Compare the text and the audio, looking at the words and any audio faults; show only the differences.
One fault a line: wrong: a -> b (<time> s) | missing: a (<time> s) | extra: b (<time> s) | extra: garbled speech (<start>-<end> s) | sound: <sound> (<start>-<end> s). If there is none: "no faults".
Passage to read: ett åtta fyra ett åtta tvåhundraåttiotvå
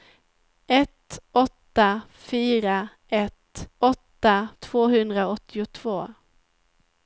no faults